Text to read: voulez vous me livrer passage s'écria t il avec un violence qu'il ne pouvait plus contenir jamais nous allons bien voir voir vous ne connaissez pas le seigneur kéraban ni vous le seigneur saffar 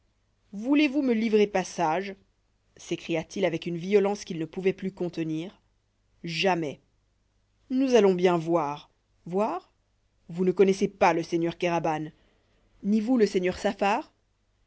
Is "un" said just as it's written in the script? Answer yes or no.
no